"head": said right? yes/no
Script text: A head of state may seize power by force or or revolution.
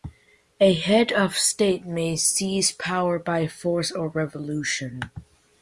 yes